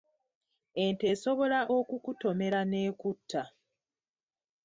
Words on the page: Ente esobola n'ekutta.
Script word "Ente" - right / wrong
right